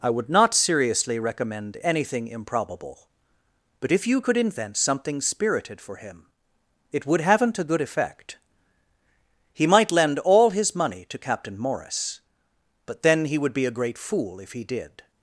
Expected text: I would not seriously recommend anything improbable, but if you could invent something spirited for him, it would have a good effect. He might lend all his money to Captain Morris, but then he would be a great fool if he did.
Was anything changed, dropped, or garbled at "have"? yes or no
yes